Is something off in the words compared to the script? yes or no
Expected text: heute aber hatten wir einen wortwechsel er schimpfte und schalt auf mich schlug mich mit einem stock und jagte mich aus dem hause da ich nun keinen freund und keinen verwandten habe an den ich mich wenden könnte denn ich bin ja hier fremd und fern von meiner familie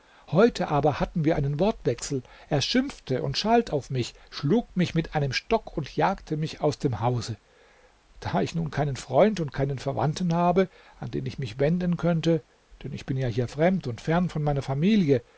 no